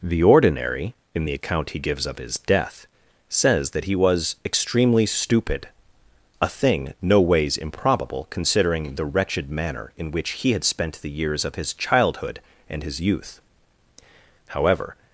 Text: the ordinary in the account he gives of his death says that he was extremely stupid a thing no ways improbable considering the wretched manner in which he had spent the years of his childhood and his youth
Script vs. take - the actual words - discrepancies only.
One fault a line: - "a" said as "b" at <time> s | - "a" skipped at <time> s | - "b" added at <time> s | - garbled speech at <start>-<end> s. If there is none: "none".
- "however" added at 14.5 s